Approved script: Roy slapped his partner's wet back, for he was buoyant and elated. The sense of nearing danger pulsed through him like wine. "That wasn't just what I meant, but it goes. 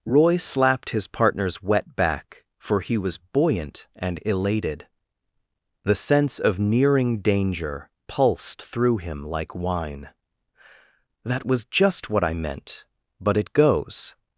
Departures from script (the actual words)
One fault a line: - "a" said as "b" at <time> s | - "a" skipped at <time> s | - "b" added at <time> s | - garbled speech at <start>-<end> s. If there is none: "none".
- "wasn't" said as "was" at 11.4 s